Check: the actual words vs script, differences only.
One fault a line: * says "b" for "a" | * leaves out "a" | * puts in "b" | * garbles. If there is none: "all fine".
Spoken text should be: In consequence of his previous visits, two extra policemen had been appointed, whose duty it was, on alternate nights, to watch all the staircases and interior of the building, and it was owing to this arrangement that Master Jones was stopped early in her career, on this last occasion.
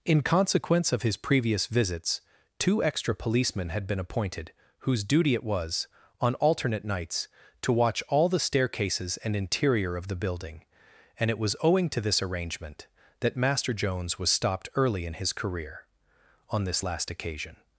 * says "his" for "her"